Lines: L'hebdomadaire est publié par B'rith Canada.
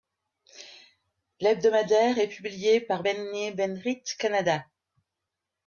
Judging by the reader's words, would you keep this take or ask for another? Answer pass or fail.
fail